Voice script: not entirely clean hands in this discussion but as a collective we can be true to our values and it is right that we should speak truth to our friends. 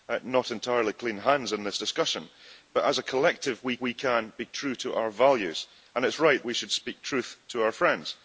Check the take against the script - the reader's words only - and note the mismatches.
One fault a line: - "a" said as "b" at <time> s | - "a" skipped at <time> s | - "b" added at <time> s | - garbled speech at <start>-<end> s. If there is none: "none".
- "we" added at 3.8 s
- "that" skipped at 6.4 s